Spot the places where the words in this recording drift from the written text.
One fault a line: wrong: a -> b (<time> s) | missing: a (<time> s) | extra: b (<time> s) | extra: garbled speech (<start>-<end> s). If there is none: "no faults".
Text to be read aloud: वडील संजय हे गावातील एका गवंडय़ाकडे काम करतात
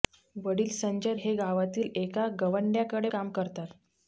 no faults